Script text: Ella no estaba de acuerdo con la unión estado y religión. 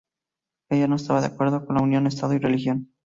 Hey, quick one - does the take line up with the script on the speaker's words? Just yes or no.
yes